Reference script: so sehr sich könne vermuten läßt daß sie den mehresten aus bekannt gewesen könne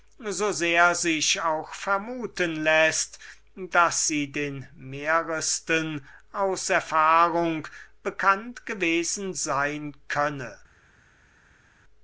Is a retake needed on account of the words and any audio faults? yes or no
yes